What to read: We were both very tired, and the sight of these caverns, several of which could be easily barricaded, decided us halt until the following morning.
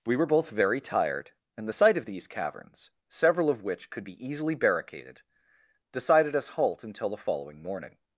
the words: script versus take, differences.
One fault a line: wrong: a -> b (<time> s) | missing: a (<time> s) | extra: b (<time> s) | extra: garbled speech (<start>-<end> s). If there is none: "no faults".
no faults